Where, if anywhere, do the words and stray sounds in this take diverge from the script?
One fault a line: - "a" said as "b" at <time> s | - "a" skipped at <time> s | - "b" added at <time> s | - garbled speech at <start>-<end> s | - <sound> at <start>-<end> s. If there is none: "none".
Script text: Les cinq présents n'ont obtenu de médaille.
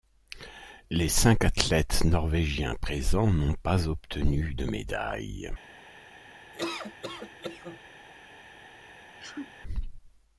- "athlètes norvégiens" added at 1.4 s
- "pas" added at 3.6 s
- laugh at 6.5-7.8 s
- sneeze at 9.1-9.5 s